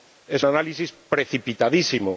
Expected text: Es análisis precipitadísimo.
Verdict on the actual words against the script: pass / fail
pass